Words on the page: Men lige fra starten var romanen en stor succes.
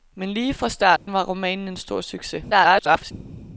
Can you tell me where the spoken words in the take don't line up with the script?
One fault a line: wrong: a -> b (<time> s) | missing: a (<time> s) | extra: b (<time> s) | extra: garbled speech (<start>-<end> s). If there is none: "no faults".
extra: garbled speech (2.5-3.1 s)